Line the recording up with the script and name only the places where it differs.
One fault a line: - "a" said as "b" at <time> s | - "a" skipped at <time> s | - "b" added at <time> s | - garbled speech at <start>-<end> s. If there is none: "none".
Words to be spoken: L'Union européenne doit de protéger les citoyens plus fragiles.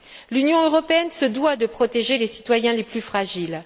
- "se" added at 1.1 s
- "les" added at 2.7 s